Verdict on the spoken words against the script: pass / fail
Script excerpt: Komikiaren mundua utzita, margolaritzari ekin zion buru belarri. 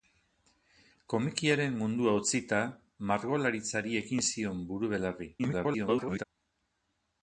fail